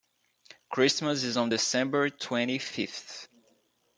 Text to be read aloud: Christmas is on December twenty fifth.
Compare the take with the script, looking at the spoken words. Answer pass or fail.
pass